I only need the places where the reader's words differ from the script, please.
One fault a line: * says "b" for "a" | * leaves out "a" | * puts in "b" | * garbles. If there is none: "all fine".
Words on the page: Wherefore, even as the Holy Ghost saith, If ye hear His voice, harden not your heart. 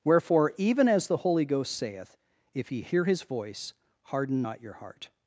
all fine